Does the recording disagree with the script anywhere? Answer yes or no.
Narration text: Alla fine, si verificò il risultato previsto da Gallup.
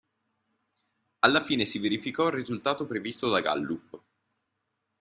no